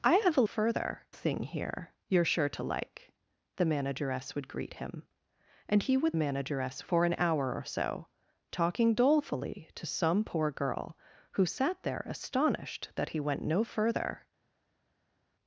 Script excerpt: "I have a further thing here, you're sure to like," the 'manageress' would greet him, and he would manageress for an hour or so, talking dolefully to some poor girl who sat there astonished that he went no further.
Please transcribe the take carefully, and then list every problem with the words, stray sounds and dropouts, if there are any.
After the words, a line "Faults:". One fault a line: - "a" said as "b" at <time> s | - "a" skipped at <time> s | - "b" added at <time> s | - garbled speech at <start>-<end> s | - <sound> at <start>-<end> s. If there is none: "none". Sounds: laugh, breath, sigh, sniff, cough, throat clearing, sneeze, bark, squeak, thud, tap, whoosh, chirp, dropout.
"I have a further thing here, you're sure to like," the 'manageress' would greet him, and he would manageress for an hour or so, talking dolefully to some poor girl who sat there astonished that he went no further.
Faults:
none